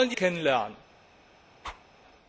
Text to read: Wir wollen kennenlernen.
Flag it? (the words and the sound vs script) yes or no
yes